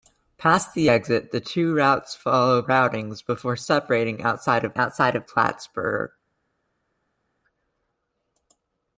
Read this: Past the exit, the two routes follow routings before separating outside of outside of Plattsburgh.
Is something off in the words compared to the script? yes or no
no